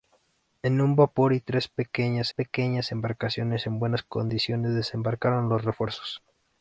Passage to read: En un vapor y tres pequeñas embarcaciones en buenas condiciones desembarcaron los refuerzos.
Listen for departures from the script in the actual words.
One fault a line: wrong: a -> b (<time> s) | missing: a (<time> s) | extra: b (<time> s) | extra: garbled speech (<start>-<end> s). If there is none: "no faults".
extra: pequeñas (2.3 s)